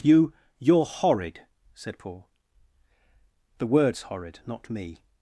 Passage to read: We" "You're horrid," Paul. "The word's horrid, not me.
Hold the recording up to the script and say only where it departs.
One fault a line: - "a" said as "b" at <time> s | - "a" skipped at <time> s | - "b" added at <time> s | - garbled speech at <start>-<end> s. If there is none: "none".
- "We" said as "You" at 0.0 s
- "said" added at 1.7 s